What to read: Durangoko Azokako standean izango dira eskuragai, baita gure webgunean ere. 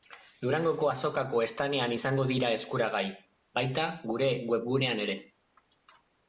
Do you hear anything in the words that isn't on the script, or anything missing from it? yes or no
no